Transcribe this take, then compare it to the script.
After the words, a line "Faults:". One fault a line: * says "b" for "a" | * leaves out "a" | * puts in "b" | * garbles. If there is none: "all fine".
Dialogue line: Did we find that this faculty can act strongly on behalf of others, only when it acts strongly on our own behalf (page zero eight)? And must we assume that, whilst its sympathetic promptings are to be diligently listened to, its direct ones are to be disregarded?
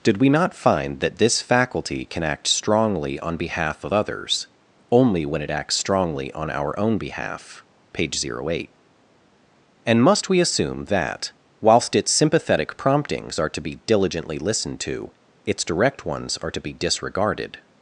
Did we not find that this faculty can act strongly on behalf of others, only when it acts strongly on our own behalf (page zero eight)? And must we assume that, whilst its sympathetic promptings are to be diligently listened to, its direct ones are to be disregarded?
Faults:
* puts in "not"